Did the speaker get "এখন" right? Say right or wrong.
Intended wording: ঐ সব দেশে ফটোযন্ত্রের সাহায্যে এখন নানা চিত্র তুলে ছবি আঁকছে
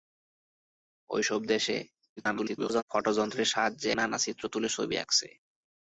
wrong